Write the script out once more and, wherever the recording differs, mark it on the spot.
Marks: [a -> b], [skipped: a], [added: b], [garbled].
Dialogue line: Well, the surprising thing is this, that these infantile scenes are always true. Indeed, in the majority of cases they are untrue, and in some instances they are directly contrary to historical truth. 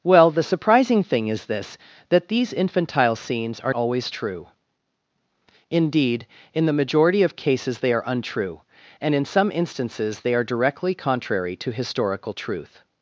Well, the surprising thing is this, that these infantile scenes are always true. Indeed, in the majority of cases they are untrue, and in some instances they are directly contrary to historical truth.